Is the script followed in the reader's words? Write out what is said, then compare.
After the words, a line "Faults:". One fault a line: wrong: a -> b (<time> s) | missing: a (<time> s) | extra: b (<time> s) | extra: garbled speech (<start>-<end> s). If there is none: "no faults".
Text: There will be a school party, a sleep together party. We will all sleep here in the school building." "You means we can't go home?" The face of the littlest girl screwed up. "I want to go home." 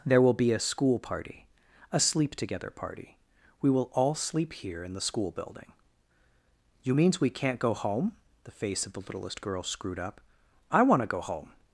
There will be a school party, a sleep together party. We will all sleep here in the school building." "You means we can't go home?" The face of the littlest girl screwed up. "I want to go home."
Faults:
no faults